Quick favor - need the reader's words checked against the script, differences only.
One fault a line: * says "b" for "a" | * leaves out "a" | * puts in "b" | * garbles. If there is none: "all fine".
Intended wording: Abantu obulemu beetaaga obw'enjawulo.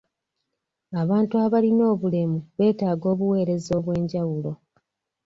* puts in "abalina"
* puts in "obuweereza"